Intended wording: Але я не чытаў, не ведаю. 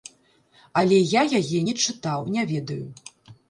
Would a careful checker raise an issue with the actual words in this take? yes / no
yes